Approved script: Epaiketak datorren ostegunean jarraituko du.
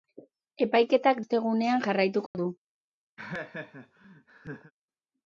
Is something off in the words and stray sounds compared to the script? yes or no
yes